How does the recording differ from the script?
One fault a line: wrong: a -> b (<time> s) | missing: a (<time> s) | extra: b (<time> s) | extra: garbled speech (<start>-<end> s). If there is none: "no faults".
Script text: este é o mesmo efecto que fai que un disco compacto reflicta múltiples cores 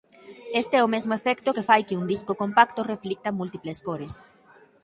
no faults